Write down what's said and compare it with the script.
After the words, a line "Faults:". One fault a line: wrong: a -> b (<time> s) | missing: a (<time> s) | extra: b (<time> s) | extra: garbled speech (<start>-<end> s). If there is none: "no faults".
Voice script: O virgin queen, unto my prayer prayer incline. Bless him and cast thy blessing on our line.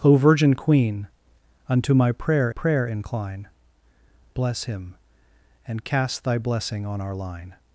O virgin queen, unto my prayer prayer incline. Bless him and cast thy blessing on our line.
Faults:
no faults